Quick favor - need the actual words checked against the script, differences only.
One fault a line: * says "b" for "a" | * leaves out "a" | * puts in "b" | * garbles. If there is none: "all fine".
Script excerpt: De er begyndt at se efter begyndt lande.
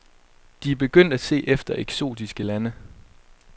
* says "eksotiske" for "begyndt"